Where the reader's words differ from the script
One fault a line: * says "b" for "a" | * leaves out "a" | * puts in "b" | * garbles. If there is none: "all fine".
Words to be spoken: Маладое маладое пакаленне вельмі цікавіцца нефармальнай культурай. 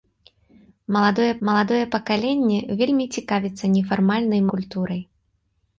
all fine